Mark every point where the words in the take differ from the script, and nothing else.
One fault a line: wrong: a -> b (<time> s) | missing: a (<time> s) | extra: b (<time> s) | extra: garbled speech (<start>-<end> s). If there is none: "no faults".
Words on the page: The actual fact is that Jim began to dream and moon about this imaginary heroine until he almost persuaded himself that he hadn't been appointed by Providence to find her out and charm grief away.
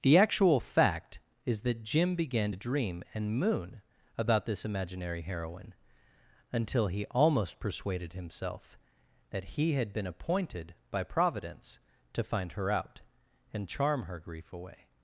wrong: hadn't -> had (9.7 s)
extra: her (14.0 s)